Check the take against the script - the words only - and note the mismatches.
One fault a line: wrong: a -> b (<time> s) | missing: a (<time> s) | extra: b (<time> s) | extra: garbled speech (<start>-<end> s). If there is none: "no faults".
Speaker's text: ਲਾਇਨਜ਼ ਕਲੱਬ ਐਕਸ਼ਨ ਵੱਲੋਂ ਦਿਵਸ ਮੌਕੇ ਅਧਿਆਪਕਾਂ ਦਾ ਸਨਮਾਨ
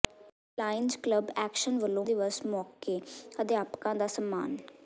no faults